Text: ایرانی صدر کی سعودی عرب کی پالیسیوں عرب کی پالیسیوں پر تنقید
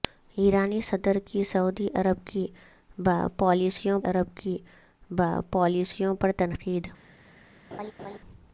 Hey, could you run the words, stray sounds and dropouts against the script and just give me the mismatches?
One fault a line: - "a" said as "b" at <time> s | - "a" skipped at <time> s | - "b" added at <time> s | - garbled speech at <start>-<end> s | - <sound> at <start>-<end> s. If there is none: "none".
- laugh at 7.7-8.2 s